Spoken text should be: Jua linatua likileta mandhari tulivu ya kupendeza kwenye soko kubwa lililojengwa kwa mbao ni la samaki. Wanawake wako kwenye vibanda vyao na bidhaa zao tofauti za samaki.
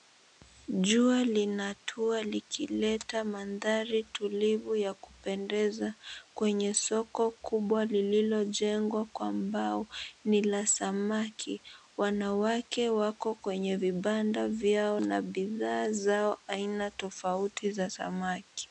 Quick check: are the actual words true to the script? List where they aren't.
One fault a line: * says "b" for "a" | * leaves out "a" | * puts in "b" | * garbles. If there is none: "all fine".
* puts in "aina"